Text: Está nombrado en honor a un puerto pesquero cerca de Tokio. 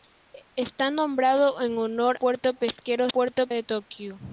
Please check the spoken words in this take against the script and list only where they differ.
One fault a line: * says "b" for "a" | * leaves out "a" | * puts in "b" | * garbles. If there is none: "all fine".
* leaves out "a un"
* says "puerto" for "cerca"